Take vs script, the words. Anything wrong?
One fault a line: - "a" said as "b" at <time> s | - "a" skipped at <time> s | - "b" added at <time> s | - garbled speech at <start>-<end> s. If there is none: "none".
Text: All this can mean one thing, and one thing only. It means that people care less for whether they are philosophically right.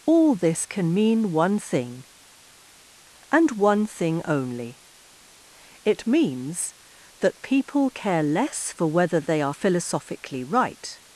none